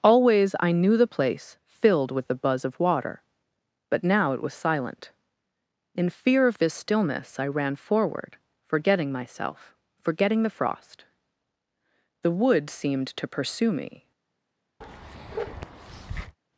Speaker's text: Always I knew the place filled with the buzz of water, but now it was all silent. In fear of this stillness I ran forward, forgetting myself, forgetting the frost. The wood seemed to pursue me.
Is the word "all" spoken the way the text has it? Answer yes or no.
no